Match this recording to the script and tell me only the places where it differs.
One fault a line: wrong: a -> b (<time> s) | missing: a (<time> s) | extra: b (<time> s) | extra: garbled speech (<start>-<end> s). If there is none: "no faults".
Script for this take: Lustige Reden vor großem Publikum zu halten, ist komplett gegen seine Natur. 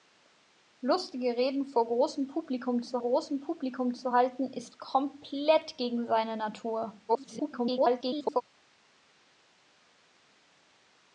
extra: großem Publikum zu (3.0 s)
extra: garbled speech (7.1-8.4 s)